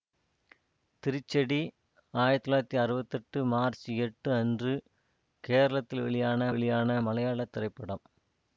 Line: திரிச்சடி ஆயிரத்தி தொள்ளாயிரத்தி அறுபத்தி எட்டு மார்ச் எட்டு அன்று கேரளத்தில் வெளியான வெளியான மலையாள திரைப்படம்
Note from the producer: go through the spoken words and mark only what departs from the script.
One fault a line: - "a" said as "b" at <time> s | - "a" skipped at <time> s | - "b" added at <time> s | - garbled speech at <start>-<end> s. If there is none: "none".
none